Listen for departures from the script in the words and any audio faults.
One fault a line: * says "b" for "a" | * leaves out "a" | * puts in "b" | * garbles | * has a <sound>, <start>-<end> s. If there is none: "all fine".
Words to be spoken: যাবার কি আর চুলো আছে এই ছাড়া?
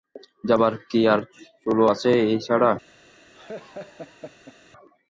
* has a laugh, 3.3-4.6 s